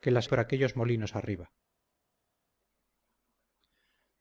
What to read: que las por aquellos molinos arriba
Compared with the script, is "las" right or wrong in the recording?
right